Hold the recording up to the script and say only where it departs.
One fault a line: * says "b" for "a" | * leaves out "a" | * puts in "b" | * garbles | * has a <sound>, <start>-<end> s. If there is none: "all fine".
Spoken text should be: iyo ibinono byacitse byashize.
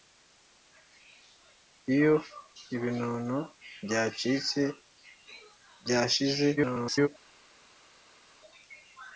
* garbles